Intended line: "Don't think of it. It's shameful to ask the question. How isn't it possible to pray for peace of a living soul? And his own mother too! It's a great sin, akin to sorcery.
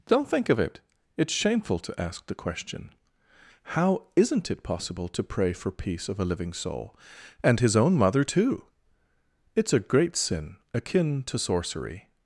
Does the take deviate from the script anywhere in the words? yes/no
no